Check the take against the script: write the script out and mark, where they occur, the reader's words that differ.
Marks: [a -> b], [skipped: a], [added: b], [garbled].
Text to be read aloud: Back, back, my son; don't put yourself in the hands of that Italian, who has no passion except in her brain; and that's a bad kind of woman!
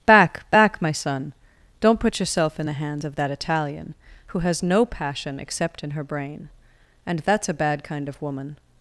Back, back, my son; don't put yourself in the hands of that Italian, who has no passion except in her brain; and that's a bad kind of woman!